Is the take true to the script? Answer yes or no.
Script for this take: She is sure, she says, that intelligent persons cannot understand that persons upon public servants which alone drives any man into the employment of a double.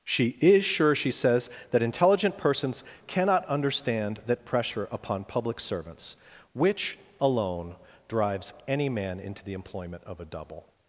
no